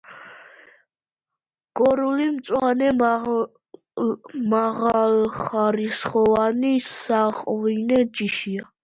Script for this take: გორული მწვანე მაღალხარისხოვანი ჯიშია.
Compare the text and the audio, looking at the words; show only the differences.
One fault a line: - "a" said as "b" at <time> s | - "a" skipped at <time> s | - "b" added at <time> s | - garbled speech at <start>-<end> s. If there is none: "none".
- "საღვინე" added at 6.9 s